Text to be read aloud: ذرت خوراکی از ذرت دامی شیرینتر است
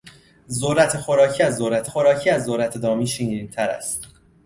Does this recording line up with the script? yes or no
no